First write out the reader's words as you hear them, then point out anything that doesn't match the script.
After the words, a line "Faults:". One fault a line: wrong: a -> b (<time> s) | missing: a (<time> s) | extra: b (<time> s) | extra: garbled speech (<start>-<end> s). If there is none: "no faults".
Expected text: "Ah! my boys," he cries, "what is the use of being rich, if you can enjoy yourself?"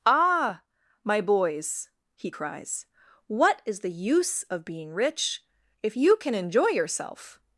"Ah! my boys," he cries, "what is the use of being rich, if you can enjoy yourself?"
Faults:
no faults